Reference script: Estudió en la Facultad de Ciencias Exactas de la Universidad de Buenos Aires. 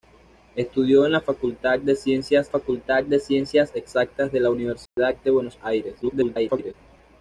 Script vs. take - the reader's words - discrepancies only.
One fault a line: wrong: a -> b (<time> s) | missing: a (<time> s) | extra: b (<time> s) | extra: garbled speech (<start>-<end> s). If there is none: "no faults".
extra: Facultad de Ciencias (2.5 s)
extra: garbled speech (6.0-6.7 s)